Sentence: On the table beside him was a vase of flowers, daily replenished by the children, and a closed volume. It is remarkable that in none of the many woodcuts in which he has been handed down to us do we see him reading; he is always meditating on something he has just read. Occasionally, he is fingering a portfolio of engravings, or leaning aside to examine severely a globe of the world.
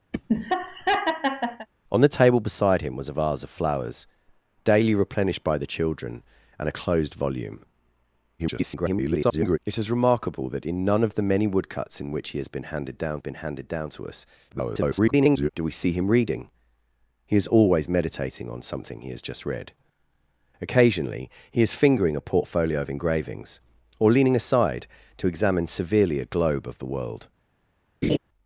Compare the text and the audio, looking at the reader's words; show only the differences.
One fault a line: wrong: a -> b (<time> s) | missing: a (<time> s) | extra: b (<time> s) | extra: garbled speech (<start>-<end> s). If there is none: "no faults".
extra: garbled speech (8.4-9.6 s)
extra: been handed down (13.2 s)
extra: garbled speech (14.5-15.5 s)